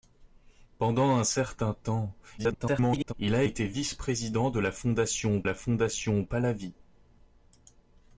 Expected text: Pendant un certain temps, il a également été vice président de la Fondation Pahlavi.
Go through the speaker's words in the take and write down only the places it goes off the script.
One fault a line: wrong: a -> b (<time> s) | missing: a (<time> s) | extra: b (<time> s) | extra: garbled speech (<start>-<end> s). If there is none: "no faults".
extra: garbled speech (2.4-3.1 s)
missing: également (3.4 s)
extra: la Fondation (5.4 s)